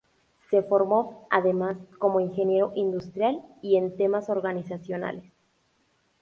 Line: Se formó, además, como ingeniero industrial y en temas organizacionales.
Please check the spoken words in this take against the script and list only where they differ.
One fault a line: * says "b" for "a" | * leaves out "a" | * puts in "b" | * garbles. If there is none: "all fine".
all fine